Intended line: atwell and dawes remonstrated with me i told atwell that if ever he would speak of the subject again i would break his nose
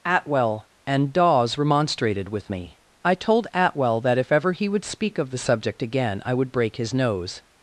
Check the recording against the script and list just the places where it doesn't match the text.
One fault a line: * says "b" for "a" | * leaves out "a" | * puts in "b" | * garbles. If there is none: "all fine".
all fine